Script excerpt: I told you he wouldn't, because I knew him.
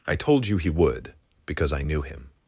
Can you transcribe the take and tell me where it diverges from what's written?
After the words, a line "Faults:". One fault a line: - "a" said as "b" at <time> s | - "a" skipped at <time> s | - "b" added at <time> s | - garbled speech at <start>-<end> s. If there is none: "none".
I told you he would, because I knew him.
Faults:
- "wouldn't" said as "would" at 0.7 s